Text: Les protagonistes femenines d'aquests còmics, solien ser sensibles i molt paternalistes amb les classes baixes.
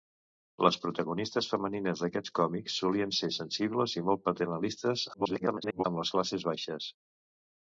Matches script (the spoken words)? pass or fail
fail